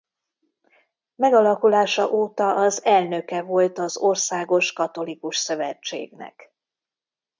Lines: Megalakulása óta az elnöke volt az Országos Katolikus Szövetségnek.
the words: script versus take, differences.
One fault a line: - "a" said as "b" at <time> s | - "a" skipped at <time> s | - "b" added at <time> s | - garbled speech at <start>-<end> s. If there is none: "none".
none